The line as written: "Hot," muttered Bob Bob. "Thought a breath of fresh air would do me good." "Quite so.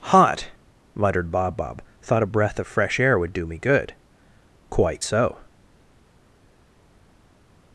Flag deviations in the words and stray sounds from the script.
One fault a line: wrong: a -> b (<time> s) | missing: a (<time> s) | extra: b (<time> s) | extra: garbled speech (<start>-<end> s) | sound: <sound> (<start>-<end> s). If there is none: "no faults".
no faults